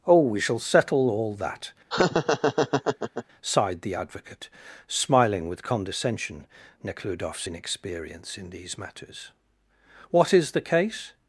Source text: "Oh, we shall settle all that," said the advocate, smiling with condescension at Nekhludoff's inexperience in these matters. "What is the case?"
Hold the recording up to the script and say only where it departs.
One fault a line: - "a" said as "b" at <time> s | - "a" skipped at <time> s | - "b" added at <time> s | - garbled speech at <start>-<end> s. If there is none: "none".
- "said" said as "sighed" at 3.4 s
- "at" skipped at 6.5 s